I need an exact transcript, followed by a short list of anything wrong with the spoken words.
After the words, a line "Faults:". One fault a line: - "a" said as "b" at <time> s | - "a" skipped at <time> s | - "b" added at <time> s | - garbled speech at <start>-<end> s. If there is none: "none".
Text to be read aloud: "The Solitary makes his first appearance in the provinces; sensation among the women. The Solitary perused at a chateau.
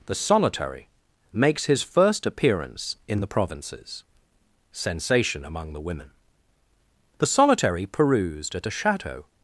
"The Solitary makes his first appearance in the provinces; sensation among the women. The Solitary perused at a chateau.
Faults:
none